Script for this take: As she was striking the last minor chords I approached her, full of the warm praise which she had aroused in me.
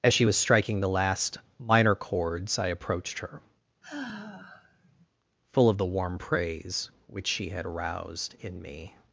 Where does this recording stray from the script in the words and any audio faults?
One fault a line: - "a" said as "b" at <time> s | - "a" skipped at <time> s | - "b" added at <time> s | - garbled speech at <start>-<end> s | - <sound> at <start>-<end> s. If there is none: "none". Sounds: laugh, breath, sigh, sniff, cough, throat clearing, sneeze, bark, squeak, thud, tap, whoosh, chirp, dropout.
- sigh at 3.8-5.1 s